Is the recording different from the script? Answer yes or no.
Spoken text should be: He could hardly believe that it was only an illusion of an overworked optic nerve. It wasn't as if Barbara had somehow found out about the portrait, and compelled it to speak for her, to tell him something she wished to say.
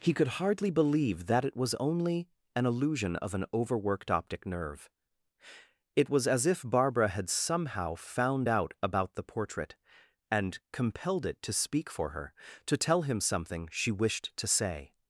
yes